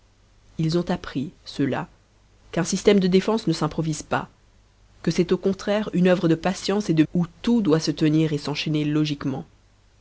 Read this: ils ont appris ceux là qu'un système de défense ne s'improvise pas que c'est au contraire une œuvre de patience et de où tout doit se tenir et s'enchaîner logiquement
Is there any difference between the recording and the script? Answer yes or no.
no